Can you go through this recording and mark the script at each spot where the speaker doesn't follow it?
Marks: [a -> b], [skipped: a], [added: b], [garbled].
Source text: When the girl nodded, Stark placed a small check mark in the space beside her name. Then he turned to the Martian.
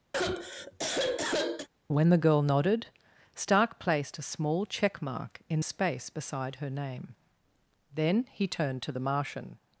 When the girl nodded, Stark placed a small check mark in [skipped: the] space beside her name. Then he turned to the Martian.